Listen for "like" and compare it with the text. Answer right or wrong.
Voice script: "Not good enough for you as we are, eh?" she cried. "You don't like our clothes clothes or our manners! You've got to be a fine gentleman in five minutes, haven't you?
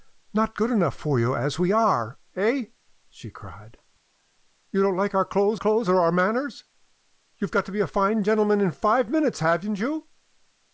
right